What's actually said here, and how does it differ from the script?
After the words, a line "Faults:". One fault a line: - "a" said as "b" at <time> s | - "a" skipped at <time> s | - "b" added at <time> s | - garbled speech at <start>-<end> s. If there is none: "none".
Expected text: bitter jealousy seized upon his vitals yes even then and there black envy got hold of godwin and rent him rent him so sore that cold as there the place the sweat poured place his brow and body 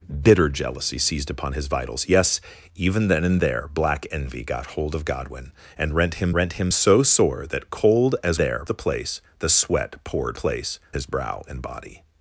bitter jealousy seized upon his vitals yes even then and there black envy got hold of godwin and rent him rent him so sore that cold as there the place the sweat poured place his brow and body
Faults:
none